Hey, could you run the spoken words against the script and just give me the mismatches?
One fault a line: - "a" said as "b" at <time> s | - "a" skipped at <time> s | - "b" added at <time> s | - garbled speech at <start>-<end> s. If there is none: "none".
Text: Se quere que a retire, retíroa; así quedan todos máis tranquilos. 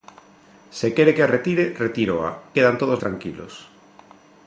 - "así" skipped at 2.3 s
- "máis" skipped at 3.0 s